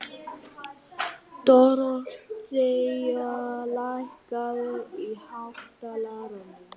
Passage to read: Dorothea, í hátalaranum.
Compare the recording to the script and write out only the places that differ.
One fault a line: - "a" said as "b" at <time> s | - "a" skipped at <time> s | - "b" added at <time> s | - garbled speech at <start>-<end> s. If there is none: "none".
- "lækkaðu" added at 3.8 s